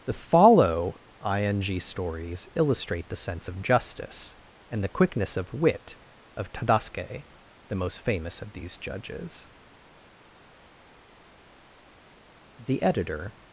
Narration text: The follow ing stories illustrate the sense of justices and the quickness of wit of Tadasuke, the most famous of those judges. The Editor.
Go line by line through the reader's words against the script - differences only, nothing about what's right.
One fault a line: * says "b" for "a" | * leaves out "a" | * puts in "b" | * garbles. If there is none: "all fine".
* says "justice" for "justices"
* says "these" for "those"